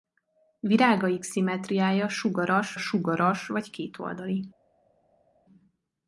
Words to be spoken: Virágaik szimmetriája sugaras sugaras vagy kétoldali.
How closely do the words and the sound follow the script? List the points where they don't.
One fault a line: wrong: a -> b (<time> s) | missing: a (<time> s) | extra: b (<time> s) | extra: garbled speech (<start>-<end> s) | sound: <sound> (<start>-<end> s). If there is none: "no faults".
no faults